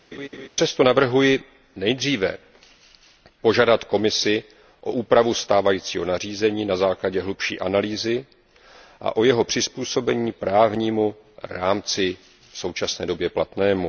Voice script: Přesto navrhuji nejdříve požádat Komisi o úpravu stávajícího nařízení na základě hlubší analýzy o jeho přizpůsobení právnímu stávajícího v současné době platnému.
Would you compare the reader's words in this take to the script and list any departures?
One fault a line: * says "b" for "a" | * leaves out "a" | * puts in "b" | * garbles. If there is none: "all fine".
* puts in "a"
* says "rámci" for "stávajícího"